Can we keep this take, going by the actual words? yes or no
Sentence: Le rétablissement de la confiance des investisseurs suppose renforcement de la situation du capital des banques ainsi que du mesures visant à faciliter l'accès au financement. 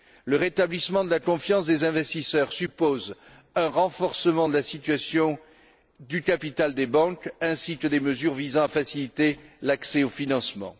no